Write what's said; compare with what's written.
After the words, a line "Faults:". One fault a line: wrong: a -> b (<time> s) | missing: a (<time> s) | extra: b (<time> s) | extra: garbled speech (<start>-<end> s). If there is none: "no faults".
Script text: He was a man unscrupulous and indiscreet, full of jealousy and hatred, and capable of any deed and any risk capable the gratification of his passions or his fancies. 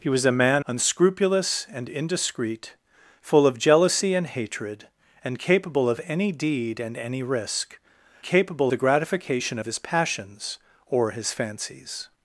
He was a man unscrupulous and indiscreet, full of jealousy and hatred, and capable of any deed and any risk capable the gratification of his passions or his fancies.
Faults:
no faults